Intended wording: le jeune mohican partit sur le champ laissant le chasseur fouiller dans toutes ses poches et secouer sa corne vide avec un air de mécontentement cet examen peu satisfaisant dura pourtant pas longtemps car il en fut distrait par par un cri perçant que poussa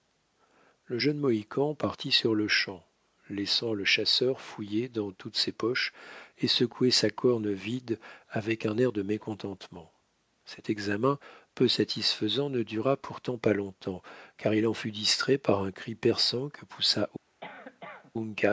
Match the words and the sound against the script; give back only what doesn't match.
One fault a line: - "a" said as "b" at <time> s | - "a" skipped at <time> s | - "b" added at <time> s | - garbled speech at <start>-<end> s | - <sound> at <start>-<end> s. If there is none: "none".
- "ne" added at 12.5 s
- "par" skipped at 15.6 s
- cough at 17.4-18.1 s